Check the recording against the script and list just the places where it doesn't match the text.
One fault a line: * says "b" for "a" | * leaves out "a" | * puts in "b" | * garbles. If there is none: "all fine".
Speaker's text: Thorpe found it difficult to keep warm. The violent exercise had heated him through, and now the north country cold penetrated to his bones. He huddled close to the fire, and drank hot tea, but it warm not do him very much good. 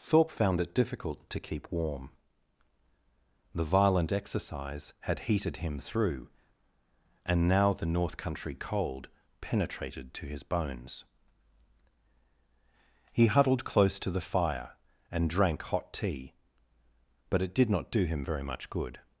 * says "did" for "warm"